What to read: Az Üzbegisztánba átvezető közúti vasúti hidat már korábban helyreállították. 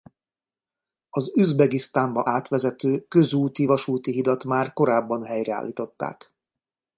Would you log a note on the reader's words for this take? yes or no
no